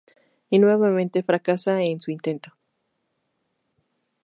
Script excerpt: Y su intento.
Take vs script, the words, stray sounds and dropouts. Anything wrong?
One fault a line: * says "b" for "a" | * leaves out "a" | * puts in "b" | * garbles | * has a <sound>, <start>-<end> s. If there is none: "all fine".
* puts in "nuevamente fracasa en"